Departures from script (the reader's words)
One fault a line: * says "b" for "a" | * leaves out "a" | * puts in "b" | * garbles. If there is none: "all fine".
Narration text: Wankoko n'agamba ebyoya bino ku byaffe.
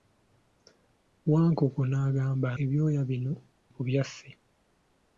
all fine